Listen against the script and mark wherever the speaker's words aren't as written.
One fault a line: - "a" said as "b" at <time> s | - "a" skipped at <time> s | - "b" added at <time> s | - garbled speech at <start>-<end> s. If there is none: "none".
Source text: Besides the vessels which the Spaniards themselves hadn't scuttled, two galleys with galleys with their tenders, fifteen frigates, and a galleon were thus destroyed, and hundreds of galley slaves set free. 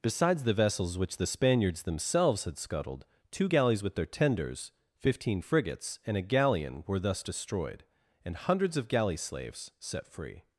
- "hadn't" said as "had" at 2.5 s
- "galleys with" skipped at 4.0 s